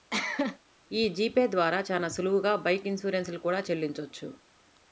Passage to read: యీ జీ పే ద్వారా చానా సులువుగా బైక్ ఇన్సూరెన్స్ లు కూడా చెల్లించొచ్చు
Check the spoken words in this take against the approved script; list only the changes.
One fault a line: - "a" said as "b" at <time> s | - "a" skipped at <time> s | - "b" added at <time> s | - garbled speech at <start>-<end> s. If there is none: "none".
none